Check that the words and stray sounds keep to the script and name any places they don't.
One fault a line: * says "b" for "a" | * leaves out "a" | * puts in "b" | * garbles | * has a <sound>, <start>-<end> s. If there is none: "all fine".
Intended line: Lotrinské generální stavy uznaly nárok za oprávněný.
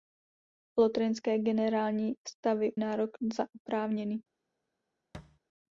* leaves out "uznaly"
* has a thud, 5.1-5.4 s